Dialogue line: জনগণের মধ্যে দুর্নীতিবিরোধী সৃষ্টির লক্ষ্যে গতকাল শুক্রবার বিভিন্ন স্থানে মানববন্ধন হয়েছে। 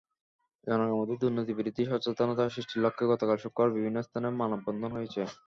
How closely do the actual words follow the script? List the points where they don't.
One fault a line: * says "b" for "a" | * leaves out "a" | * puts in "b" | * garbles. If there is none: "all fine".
* puts in "সচেতনতা"